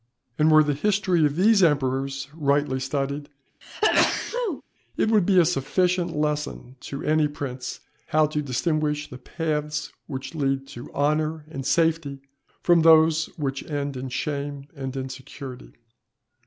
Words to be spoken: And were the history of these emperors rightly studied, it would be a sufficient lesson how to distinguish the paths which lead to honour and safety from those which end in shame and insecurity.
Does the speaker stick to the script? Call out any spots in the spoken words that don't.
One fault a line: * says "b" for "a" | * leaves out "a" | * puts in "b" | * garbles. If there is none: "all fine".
* puts in "to any prince"